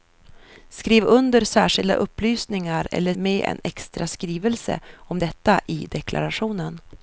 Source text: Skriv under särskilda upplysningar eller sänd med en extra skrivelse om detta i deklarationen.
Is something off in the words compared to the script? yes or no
yes